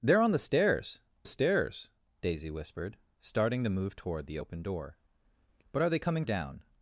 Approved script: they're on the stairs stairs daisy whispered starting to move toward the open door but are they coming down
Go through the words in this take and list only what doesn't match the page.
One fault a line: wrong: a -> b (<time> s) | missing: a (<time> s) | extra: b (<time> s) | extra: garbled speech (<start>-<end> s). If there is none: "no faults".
no faults